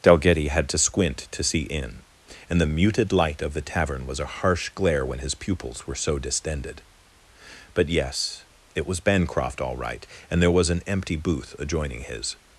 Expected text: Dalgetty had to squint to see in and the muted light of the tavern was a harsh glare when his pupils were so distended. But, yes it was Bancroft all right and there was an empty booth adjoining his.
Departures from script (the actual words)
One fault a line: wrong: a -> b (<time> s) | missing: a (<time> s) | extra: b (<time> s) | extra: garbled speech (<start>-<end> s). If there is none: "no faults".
no faults